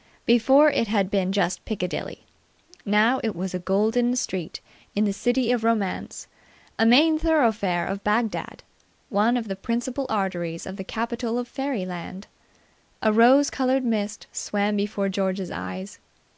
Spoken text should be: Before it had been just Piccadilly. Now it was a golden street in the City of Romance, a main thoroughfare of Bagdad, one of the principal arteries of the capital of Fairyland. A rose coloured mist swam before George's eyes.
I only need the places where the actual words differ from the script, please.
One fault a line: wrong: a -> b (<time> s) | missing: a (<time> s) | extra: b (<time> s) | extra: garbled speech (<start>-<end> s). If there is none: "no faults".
no faults